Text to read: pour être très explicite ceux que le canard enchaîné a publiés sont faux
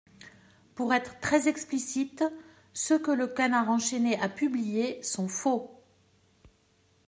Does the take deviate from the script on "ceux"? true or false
false